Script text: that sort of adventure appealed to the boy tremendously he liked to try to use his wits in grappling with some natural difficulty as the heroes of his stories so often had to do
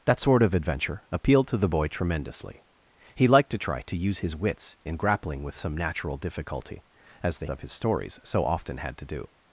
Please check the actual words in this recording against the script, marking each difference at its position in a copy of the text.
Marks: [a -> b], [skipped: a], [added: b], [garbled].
that sort of adventure appealed to the boy tremendously he liked to try to use his wits in grappling with some natural difficulty as the [skipped: heroes] of his stories so often had to do